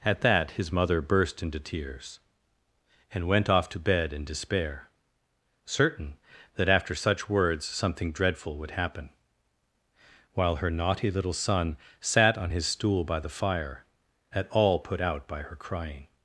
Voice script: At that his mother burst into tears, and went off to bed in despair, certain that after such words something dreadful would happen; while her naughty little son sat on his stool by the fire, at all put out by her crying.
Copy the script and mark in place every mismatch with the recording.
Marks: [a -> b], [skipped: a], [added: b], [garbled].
At that his mother burst into tears, and went off to bed in despair, certain that after such words something dreadful would happen; while her naughty little son sat on his stool by the fire, at all put out by her crying.